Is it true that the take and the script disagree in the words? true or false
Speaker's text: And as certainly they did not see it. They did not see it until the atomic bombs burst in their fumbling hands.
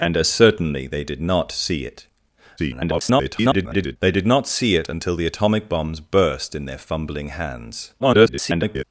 true